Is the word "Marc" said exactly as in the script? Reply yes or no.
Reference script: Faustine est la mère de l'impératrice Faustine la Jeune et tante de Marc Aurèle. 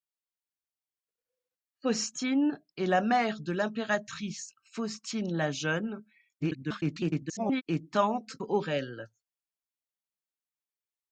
no